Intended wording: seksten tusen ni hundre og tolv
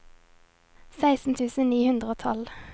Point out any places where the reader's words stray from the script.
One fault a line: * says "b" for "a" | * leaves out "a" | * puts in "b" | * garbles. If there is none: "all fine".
all fine